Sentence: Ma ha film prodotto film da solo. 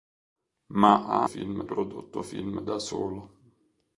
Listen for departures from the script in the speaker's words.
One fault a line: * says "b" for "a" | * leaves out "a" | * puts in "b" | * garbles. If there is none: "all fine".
all fine